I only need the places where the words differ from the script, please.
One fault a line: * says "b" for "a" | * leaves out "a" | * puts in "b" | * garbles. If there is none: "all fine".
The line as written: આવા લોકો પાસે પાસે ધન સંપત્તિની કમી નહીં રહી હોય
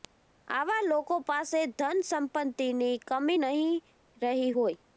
* leaves out "પાસે"